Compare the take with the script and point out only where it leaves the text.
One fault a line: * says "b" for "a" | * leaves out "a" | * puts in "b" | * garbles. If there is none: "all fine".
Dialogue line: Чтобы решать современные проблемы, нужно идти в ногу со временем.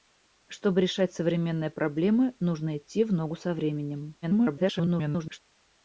* garbles